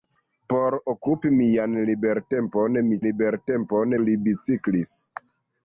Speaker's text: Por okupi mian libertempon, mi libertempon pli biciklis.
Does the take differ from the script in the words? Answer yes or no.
no